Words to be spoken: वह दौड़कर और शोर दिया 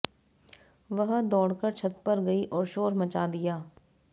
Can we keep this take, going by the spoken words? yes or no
no